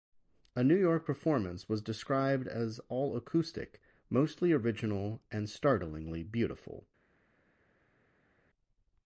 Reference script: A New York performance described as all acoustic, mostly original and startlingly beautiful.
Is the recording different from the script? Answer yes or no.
yes